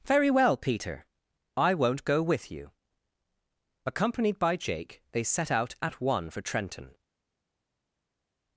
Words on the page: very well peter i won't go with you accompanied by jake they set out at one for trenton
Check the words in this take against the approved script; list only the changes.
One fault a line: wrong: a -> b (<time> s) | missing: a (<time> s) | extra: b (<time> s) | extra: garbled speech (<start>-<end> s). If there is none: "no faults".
no faults